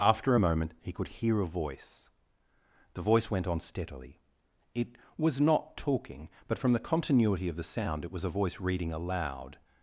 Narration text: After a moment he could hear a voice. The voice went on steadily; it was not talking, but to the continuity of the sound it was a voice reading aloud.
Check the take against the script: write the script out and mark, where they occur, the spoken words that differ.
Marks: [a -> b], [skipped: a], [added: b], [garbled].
After a moment he could hear a voice. The voice went on steadily; it was not talking, but [to -> from] the continuity of the sound it was a voice reading aloud.